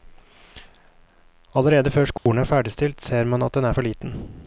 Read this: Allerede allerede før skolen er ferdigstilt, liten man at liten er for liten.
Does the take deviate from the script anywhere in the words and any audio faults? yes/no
yes